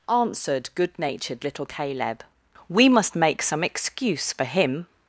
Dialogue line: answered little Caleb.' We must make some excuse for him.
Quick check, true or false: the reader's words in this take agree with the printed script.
false